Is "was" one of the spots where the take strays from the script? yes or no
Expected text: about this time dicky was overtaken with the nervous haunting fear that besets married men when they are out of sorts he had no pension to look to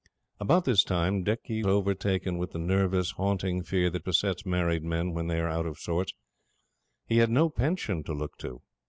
yes